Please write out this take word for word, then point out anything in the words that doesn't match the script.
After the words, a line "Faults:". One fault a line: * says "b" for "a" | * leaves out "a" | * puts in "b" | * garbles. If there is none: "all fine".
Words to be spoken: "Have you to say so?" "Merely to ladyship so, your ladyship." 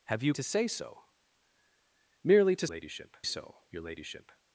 "Have you to say so?" "Merely to ladyship so, your ladyship."
Faults:
all fine